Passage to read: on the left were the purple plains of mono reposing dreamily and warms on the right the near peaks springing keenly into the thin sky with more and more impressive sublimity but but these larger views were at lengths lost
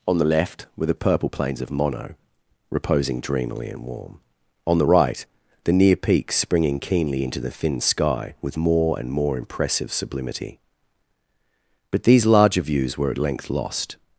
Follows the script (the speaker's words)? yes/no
no